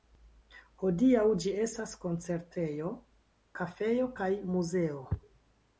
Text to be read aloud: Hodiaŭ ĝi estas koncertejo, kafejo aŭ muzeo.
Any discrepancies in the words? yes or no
yes